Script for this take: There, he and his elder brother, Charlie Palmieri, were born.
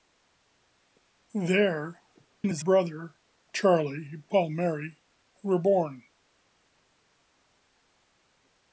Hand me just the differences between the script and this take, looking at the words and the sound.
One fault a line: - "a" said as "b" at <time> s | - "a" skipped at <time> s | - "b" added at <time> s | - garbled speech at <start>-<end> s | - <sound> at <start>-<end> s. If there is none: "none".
- "he" skipped at 2.0 s
- "elder" skipped at 2.6 s